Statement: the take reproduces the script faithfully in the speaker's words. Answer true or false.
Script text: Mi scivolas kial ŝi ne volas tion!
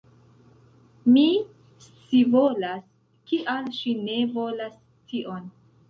true